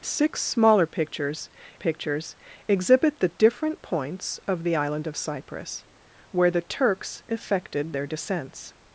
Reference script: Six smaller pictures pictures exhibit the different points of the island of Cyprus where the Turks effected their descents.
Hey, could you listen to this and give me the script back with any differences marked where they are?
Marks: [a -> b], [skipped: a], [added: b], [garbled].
Six smaller pictures pictures exhibit the different points of the island of Cyprus where the Turks effected their descents.